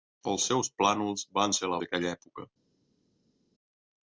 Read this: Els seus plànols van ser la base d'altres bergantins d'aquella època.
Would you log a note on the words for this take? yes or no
yes